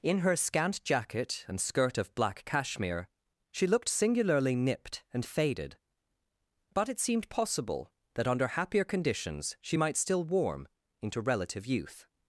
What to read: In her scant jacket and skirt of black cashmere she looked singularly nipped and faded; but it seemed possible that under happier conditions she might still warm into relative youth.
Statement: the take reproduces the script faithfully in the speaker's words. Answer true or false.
true